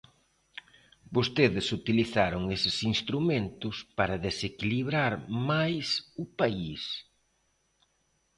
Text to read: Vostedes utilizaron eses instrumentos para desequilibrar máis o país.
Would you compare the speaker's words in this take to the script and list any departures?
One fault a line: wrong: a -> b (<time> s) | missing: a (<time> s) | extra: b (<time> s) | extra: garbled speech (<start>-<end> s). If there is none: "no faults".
no faults